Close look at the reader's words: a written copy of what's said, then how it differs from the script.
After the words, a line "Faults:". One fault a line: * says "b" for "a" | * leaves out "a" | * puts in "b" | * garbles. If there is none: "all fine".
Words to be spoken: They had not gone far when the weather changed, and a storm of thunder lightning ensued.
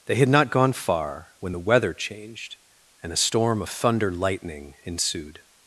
They had not gone far when the weather changed, and a storm of thunder lightning ensued.
Faults:
all fine